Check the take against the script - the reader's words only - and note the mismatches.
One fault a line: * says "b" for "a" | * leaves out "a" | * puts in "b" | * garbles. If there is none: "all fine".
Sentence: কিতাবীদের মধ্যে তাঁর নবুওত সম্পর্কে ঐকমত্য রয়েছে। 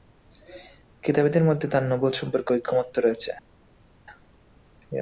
all fine